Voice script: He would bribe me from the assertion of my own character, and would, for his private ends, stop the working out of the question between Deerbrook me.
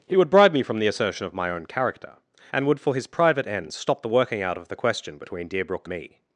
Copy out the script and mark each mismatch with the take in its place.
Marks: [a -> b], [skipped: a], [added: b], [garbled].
He would bribe me from the assertion of my own character, and would, for his private ends, stop the working out of the question between Deerbrook me.